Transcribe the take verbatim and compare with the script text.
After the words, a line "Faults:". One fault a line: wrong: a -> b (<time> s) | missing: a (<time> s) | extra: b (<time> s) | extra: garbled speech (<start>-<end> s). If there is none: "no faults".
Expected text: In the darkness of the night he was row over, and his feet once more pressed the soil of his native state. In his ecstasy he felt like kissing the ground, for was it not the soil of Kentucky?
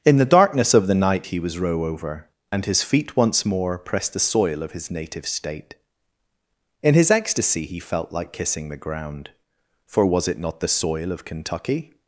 In the darkness of the night he was row over, and his feet once more pressed the soil of his native state. In his ecstasy he felt like kissing the ground, for was it not the soil of Kentucky?
Faults:
no faults